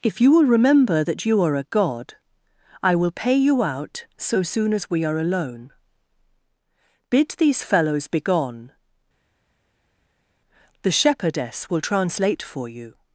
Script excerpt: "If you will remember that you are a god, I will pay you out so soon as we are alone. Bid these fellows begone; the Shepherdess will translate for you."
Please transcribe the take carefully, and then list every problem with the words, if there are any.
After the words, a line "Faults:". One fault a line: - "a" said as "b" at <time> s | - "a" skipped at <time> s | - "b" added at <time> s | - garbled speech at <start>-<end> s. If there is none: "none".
"If you will remember that you are a god, I will pay you out so soon as we are alone. Bid these fellows begone; the Shepherdess will translate for you."
Faults:
none